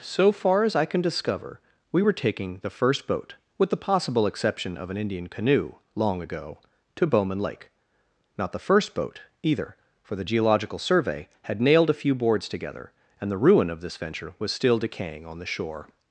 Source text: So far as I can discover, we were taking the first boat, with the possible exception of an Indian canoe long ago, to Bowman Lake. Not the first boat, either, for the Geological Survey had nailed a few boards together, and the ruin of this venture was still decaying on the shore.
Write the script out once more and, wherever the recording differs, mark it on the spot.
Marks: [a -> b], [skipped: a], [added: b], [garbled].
So far as I can discover, we were taking the first boat, with the possible exception of an Indian canoe long ago, to Bowman Lake. Not the first boat, either, for the Geological Survey had nailed a few boards together, and the ruin of this venture was still decaying on the shore.